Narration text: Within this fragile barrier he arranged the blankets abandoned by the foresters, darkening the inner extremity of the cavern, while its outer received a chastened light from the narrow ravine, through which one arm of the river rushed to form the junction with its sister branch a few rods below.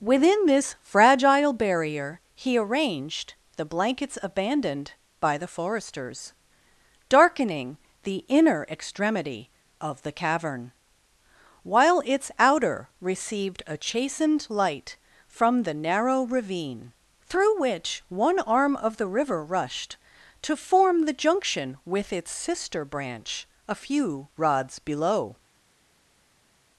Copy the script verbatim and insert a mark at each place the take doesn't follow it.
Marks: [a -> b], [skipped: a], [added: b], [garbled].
Within this fragile barrier he arranged the blankets abandoned by the foresters, darkening the inner extremity of the cavern, while its outer received a chastened light from the narrow ravine, through which one arm of the river rushed to form the junction with its sister branch a few rods below.